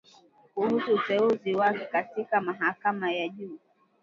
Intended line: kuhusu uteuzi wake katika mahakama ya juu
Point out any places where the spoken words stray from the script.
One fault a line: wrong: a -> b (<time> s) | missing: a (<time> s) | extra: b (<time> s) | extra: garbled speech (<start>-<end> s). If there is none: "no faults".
no faults